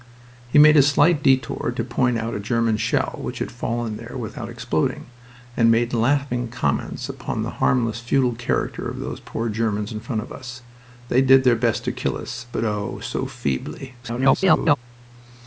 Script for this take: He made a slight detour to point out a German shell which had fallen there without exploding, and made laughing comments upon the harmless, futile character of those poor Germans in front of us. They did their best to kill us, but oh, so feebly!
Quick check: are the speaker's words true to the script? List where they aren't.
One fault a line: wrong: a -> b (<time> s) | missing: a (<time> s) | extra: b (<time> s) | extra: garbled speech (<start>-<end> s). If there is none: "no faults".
extra: garbled speech (14.0-14.8 s)